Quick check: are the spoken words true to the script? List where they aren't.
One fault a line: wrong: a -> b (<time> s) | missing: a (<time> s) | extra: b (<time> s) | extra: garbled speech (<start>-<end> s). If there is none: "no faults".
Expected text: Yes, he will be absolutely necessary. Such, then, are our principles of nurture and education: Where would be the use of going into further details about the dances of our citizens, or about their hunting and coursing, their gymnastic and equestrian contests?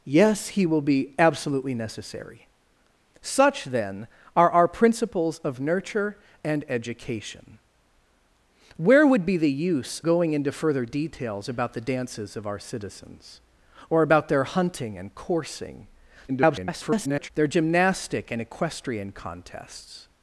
missing: of (10.0 s)
extra: garbled speech (16.3-17.3 s)